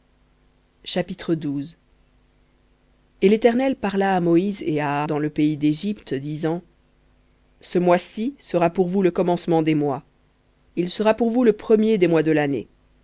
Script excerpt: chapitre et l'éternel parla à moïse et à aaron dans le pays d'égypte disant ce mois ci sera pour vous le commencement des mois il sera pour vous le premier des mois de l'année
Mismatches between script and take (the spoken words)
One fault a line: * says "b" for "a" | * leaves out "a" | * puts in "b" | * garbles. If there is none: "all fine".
* leaves out "aaron"